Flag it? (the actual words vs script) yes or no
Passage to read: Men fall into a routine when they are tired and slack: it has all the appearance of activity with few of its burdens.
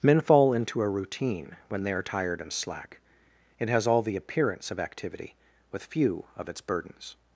no